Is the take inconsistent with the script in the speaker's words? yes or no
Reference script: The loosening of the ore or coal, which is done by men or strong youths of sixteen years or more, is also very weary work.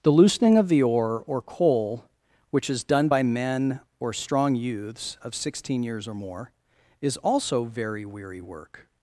no